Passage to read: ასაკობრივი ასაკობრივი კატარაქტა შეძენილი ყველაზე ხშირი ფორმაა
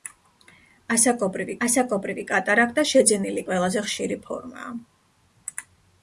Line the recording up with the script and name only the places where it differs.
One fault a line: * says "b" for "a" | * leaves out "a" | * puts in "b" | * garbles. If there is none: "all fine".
all fine